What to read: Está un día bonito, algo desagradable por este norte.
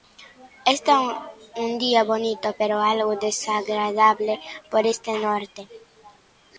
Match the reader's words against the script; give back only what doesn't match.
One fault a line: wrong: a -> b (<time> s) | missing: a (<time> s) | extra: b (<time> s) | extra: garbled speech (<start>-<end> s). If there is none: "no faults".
extra: pero (2.6 s)